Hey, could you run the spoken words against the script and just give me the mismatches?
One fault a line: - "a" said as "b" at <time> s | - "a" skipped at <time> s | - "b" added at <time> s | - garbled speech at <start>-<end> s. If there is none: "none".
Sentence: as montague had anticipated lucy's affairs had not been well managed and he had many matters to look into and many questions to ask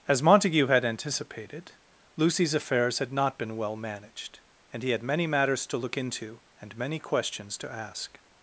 none